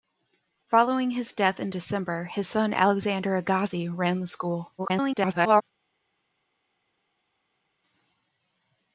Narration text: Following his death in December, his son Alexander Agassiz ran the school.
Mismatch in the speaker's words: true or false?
true